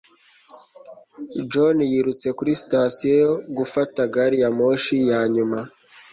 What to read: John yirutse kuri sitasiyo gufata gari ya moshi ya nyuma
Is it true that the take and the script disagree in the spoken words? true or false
false